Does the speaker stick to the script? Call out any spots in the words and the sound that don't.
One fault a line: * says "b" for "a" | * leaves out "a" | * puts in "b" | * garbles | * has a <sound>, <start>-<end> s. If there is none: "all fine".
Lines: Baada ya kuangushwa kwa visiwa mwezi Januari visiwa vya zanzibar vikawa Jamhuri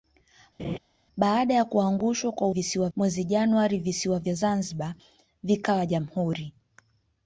* has a laugh, 0.6-0.8 s